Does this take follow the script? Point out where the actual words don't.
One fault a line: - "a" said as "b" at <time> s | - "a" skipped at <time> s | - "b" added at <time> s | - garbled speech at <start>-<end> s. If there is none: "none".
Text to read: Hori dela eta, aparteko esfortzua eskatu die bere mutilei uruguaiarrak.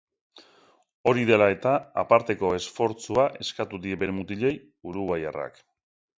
none